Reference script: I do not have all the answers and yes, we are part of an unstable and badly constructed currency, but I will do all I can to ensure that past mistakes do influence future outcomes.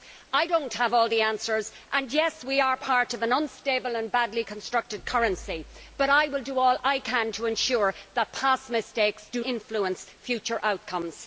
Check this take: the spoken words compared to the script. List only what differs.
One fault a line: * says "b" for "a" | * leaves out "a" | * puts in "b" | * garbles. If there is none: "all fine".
all fine